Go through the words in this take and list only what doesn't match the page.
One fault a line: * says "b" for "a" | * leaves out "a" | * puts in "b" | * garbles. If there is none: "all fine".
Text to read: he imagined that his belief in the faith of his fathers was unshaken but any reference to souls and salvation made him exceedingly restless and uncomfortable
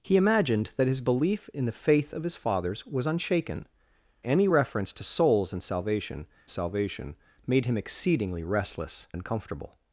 * leaves out "but"
* puts in "salvation"
* leaves out "and"